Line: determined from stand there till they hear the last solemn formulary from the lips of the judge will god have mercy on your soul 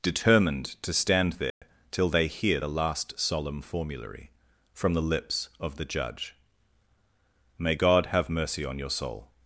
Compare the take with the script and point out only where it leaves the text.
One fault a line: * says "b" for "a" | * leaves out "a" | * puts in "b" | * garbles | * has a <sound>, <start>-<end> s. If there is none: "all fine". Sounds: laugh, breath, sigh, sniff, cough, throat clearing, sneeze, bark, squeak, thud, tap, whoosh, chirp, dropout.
* says "to" for "from"
* has a dropout, 1.5-1.6 s
* says "may" for "will"